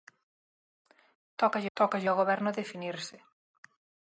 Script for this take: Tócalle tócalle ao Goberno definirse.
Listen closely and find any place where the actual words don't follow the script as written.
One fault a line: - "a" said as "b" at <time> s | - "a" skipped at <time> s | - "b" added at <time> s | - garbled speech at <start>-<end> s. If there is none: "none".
none